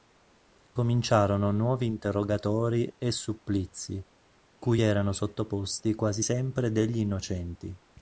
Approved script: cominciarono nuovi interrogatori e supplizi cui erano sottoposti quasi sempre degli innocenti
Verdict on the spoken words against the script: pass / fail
pass